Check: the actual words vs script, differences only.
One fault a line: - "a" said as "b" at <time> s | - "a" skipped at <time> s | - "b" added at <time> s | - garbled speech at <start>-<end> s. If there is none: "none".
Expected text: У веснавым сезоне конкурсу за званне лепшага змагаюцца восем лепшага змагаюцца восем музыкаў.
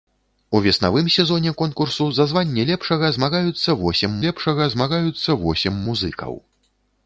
none